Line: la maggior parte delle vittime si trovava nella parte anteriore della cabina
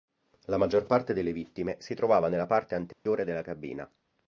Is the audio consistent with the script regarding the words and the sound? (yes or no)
no